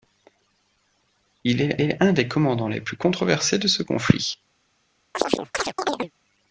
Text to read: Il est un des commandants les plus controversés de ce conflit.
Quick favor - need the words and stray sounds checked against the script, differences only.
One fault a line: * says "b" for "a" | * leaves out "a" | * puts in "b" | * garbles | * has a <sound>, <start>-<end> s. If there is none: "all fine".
* puts in "est"
* has a chirp, 5.1-6.1 s